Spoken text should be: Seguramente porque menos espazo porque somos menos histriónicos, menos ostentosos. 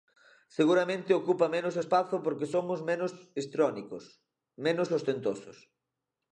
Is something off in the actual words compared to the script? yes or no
yes